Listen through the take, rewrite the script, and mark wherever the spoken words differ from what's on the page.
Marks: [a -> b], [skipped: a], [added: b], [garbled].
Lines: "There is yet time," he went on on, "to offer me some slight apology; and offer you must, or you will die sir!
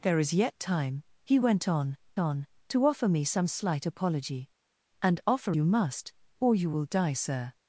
"There is yet time," he went on on, "to offer me some slight apology; and offer you must, or you will die sir!